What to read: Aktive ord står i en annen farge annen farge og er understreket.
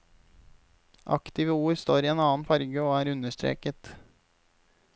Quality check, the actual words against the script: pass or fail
fail